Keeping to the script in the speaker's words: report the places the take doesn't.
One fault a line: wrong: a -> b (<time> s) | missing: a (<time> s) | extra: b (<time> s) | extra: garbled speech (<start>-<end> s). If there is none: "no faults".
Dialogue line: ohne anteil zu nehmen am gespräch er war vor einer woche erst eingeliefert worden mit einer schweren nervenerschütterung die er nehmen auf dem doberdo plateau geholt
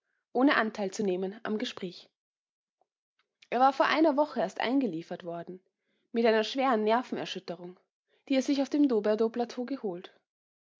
wrong: nehmen -> sich (8.4 s)